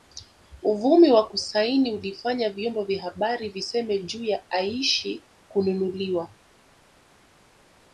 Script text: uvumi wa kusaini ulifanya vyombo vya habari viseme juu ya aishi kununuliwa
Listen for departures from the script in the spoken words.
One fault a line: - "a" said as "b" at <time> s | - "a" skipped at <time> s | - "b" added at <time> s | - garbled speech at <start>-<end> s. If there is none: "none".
none